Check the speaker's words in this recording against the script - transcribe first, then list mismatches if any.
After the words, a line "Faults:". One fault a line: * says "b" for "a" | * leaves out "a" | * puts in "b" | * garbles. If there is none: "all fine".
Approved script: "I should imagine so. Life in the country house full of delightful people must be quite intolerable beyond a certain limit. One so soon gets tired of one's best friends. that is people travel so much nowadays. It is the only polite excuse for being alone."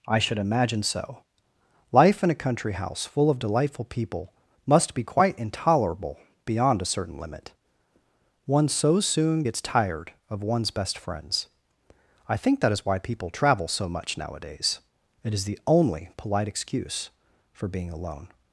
"I should imagine so. Life in a country house full of delightful people must be quite intolerable beyond a certain limit. One so soon gets tired of one's best friends. I think that is why people travel so much nowadays. It is the only polite excuse for being alone."
Faults:
* says "a" for "the"
* puts in "I think"
* puts in "why"